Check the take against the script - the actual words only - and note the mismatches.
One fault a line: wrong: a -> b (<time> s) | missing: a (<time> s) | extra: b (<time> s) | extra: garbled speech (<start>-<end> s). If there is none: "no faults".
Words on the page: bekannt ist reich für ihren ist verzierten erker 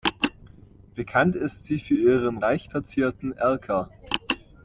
wrong: reich -> sie (1.6 s)
wrong: ist -> reich (2.4 s)